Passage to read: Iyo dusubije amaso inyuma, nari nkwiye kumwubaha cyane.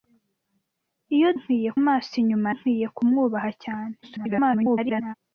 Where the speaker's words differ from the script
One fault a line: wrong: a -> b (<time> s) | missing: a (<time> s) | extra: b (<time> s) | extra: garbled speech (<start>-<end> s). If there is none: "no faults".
wrong: dusubije -> nkwiye (1.4 s)
missing: nari (2.5 s)
extra: garbled speech (4.0-5.1 s)